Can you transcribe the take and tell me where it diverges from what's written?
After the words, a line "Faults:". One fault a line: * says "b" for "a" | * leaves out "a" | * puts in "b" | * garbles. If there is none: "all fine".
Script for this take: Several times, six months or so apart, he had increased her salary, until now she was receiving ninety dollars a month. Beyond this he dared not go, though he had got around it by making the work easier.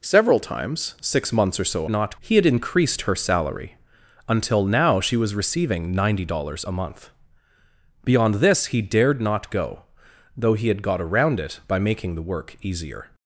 Several times, six months or so not, he had increased her salary, until now she was receiving ninety dollars a month. Beyond this he dared not go, though he had got around it by making the work easier.
Faults:
* says "not" for "apart"